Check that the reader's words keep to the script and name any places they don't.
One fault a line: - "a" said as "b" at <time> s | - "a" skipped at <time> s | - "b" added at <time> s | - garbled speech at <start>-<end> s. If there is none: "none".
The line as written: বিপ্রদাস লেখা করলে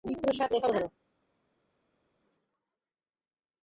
none